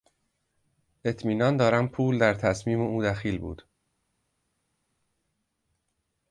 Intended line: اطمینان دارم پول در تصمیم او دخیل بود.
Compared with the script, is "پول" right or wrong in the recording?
right